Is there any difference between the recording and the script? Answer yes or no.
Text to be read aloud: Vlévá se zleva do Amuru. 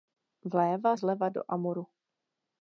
yes